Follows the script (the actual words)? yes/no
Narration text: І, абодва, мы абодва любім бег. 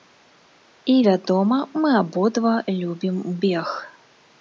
no